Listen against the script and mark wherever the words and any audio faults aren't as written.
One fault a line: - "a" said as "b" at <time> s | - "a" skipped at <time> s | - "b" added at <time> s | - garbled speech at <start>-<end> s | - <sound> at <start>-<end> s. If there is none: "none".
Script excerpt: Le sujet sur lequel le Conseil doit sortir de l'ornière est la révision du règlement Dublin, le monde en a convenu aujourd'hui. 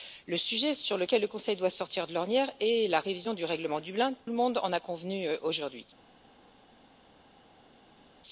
none